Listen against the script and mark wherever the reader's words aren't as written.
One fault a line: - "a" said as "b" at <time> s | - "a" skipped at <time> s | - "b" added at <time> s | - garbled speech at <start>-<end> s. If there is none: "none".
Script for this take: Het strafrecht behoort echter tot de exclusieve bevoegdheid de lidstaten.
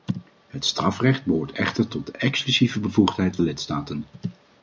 none